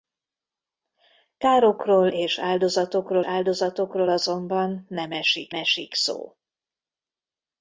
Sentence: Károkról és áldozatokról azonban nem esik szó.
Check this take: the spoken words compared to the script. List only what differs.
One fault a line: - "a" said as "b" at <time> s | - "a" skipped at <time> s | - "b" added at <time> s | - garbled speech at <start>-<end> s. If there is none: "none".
- "áldozatokról" added at 3.2 s
- "esik" added at 5.5 s